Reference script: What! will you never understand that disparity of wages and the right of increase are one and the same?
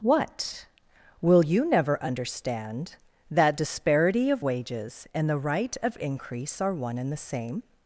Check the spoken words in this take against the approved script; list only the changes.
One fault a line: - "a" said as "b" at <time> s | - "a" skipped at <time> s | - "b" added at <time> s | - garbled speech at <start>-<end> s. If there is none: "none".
none